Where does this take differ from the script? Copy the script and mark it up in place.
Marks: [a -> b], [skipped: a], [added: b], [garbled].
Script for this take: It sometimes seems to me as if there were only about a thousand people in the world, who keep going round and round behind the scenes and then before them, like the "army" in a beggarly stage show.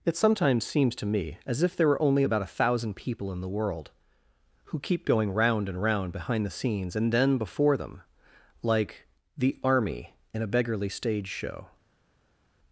It sometimes seems to me as if there were only about a thousand people in the world, who keep going round and round behind the scenes and then before them, like the "army" in a beggarly stage show.